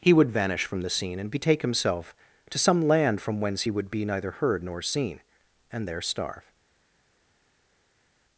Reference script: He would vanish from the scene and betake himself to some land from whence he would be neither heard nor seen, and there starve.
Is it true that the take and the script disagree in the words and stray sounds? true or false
false